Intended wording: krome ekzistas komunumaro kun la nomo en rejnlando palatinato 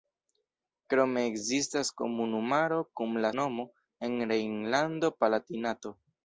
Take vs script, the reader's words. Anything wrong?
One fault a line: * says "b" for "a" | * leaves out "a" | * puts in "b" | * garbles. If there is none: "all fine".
all fine